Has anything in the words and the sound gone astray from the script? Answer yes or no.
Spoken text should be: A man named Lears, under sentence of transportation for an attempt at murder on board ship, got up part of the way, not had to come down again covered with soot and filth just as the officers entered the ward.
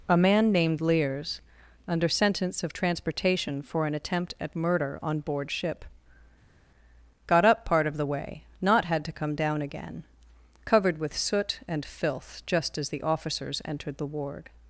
no